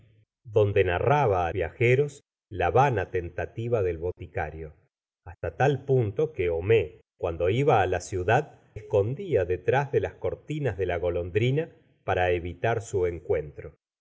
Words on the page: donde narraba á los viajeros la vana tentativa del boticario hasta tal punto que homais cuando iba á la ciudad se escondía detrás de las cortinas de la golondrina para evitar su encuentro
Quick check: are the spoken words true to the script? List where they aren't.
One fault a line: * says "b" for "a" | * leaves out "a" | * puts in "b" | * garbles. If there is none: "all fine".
* leaves out "los"
* leaves out "se"